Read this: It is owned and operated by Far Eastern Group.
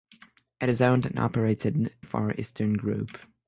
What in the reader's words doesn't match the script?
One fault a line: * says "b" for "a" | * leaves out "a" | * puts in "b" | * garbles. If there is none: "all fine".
* leaves out "by"